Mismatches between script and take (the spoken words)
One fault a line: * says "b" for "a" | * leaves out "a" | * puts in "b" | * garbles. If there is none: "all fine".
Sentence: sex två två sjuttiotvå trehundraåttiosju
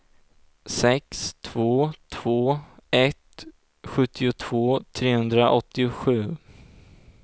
* puts in "ett"